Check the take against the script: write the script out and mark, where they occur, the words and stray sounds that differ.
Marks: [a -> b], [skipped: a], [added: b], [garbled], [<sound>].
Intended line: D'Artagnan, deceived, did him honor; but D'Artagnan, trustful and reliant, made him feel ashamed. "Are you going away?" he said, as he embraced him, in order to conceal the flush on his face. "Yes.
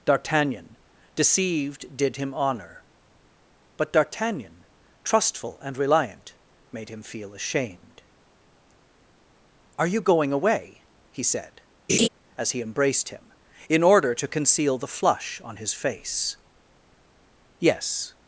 D'Artagnan, deceived, did him honor; but D'Artagnan, trustful and reliant, made him feel ashamed. "Are you going away?" he said, [laugh] as he embraced him, in order to conceal the flush on his face. "Yes.